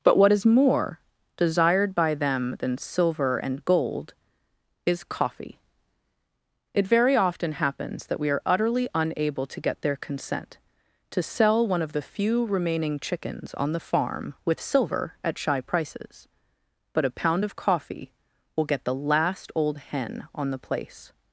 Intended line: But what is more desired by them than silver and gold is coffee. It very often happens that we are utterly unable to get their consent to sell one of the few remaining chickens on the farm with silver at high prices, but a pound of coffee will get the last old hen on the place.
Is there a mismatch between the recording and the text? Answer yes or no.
yes